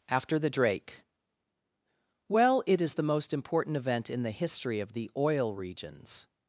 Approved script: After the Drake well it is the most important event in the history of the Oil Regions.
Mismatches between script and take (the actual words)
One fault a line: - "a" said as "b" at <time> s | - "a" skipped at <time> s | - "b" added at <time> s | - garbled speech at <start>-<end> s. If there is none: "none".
none